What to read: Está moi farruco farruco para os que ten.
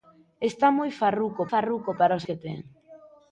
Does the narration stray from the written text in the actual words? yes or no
no